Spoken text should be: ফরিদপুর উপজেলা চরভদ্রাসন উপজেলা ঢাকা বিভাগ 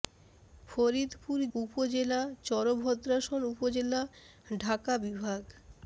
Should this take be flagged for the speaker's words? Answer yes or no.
no